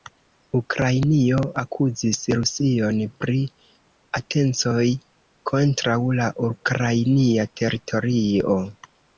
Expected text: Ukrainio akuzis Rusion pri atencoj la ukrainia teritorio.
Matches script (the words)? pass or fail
fail